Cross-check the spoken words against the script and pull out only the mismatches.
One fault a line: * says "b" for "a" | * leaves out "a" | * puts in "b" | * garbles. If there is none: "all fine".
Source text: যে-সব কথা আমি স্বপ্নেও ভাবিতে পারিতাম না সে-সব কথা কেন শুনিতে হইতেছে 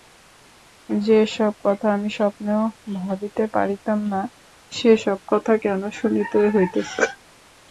all fine